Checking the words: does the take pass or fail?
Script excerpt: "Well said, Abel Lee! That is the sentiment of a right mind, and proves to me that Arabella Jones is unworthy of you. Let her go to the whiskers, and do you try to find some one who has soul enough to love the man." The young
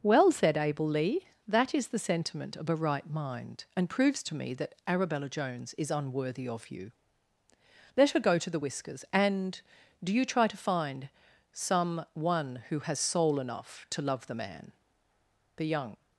pass